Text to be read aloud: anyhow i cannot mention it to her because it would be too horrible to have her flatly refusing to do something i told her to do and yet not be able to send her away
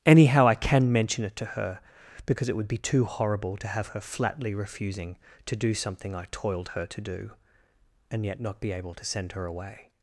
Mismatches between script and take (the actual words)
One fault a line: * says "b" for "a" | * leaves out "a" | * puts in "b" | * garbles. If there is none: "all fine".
* says "can" for "cannot"
* says "toiled" for "told"